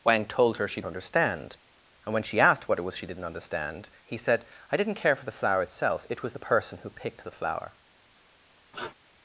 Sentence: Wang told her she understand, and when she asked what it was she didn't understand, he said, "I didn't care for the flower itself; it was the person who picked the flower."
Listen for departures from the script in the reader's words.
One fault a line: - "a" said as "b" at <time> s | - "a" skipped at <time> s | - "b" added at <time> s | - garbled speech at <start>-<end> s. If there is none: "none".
none